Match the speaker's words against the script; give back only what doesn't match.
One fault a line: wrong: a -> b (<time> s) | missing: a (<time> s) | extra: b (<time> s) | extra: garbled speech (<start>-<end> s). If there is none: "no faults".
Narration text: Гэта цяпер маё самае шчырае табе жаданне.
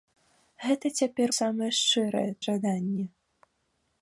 missing: маё (1.3 s)
missing: табе (2.3 s)